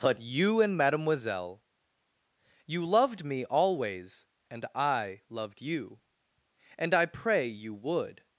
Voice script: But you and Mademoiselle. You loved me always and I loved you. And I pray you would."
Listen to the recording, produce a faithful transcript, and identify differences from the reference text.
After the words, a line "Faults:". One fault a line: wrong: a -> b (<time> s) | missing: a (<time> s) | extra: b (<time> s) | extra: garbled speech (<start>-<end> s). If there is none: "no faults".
But you and Mademoiselle. You loved me always and I loved you. And I pray you would."
Faults:
no faults